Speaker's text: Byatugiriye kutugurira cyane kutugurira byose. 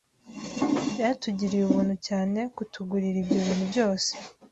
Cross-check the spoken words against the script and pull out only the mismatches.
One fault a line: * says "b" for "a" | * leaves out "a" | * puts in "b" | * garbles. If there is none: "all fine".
* says "ubuntu" for "kutugurira"
* puts in "ibyo bintu"